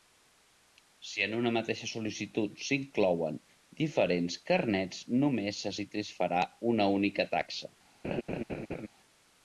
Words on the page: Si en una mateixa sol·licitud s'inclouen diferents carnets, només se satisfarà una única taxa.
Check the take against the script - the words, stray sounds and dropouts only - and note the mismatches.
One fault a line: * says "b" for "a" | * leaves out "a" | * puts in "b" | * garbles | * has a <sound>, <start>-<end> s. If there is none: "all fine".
* has a laugh, 8.0-8.9 s